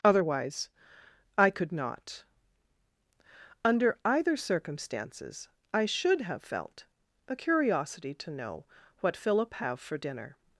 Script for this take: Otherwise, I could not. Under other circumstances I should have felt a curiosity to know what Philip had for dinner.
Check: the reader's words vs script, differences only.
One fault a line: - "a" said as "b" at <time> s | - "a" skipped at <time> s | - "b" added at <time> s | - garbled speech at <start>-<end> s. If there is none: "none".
- "other" said as "either" at 4.0 s
- "had" said as "have" at 9.5 s